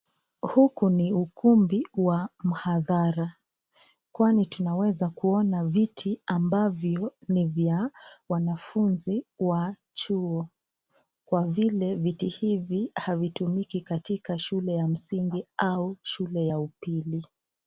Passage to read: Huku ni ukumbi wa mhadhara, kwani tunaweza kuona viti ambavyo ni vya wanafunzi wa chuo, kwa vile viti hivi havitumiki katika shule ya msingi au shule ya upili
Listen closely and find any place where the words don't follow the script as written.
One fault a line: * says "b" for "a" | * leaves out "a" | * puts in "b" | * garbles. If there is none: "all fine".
all fine